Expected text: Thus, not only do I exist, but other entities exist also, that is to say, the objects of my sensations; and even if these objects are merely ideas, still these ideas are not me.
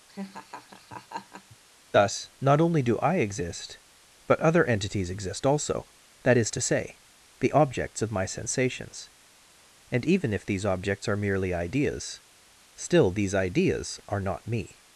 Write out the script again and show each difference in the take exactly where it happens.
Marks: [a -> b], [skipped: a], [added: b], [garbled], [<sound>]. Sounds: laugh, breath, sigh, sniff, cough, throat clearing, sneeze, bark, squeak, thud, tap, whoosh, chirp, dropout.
[laugh] Thus, not only do I exist, but other entities exist also, that is to say, the objects of my sensations; and even if these objects are merely ideas, still these ideas are not me.